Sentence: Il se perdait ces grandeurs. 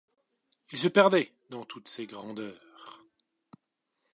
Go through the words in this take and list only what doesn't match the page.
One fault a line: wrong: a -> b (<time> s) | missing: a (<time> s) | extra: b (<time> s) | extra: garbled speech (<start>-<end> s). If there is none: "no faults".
extra: dans toutes (1.5 s)